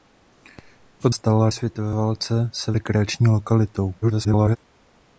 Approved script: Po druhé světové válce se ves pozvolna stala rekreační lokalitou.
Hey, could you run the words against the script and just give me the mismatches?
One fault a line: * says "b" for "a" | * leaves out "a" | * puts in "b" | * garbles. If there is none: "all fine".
* says "stala" for "druhé"
* leaves out "ves pozvolna stala"
* garbles